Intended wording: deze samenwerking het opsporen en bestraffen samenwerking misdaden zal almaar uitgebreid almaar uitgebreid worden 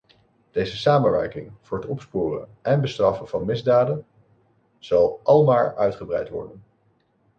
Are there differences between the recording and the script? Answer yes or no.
yes